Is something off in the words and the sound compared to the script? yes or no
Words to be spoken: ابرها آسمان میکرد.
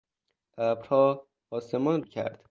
no